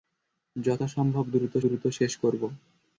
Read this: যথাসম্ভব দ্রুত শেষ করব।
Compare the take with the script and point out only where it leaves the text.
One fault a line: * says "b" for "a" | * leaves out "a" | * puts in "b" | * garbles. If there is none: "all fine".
* puts in "দ্রুত"